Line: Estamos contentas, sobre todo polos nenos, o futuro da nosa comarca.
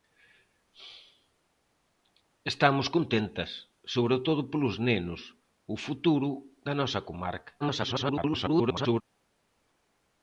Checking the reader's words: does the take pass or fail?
fail